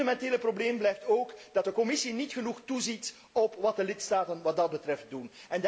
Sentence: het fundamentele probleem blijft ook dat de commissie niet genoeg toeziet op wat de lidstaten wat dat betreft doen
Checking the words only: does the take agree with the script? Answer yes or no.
yes